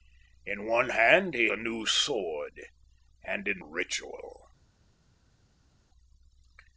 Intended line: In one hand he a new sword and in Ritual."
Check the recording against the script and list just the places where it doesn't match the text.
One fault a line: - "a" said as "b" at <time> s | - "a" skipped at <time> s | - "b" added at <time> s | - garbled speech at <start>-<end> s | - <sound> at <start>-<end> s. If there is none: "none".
none